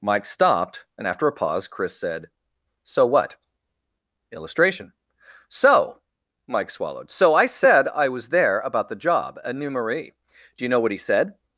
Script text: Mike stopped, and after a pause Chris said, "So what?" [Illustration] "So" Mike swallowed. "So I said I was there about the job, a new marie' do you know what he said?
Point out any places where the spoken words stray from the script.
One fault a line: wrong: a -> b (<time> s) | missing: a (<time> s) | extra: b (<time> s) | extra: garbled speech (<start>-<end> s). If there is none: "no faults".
no faults